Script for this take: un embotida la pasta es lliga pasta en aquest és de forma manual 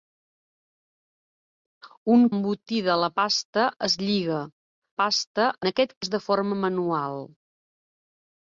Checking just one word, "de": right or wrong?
right